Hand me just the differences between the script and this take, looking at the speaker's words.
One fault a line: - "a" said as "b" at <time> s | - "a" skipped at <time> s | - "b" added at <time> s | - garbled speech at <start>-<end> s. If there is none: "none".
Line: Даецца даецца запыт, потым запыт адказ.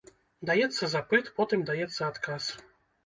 - "даецца" skipped at 0.9 s
- "запыт" said as "даецца" at 1.7 s